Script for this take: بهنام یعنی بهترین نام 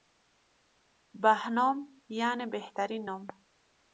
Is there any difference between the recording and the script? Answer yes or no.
no